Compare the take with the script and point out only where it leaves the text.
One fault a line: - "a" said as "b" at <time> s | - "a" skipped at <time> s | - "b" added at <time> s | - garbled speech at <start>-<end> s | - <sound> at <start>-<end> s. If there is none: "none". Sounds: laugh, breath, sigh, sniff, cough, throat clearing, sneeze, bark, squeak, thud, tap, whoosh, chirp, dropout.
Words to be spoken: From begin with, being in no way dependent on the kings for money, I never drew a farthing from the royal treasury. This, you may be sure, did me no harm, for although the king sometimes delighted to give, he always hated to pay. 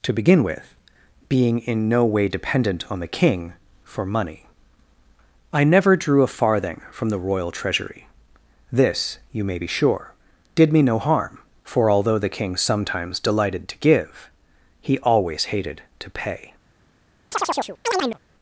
- "From" said as "To" at 0.0 s
- "kings" said as "king" at 3.1 s
- chirp at 17.3-18.2 s